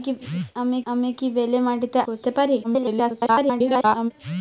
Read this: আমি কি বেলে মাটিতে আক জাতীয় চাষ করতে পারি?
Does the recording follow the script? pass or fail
fail